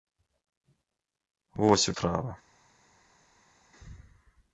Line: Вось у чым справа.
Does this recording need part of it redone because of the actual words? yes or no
yes